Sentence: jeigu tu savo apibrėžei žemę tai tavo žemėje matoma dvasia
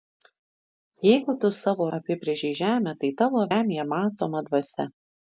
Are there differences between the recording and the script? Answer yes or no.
no